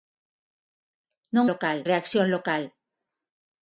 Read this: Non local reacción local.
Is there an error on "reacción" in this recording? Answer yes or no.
no